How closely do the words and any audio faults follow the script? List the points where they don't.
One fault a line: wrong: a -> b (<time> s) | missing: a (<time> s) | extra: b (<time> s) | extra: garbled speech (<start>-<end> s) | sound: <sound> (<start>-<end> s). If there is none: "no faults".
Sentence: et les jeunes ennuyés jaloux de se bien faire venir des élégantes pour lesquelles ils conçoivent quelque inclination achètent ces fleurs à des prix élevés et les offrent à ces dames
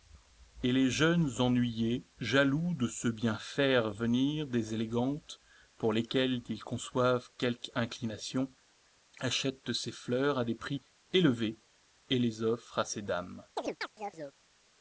sound: chirp (13.6-14.4 s)